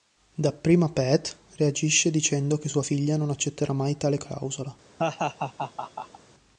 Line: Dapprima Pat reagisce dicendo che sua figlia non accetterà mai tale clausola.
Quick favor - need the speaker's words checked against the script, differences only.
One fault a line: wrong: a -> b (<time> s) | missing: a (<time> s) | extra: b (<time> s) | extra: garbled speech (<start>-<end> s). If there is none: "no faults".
no faults